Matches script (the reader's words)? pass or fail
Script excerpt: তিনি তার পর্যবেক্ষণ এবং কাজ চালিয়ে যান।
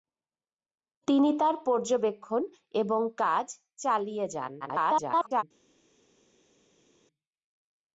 fail